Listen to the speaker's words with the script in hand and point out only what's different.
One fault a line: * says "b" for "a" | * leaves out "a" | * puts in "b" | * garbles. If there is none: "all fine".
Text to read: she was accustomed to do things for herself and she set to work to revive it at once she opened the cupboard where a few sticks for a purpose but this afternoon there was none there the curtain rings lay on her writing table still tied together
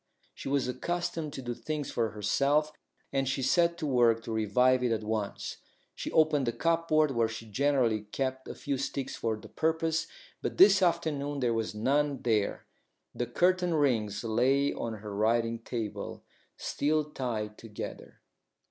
* puts in "she generally kept"
* says "the" for "a"